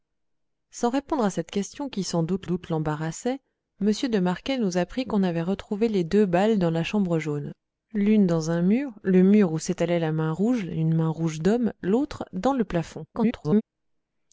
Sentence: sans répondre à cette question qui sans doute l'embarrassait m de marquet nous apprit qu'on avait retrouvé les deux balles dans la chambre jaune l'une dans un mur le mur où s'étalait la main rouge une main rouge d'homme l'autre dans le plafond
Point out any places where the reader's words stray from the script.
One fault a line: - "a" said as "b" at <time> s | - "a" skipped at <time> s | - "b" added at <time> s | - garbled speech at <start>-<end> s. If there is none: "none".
- "doute" added at 2.4 s
- garbled speech at 13.1-13.6 s